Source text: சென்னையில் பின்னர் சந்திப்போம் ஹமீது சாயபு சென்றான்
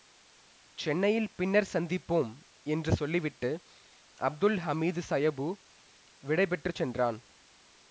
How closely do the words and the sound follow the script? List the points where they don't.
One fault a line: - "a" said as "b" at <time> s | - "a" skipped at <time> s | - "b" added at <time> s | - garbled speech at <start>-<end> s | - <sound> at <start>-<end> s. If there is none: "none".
- "என்று சொல்லிவிட்டு அப்துல்" added at 2.7 s
- "விடை பெற்று" added at 6.2 s